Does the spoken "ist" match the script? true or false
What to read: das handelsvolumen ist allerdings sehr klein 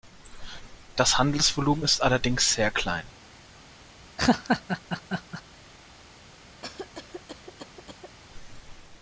true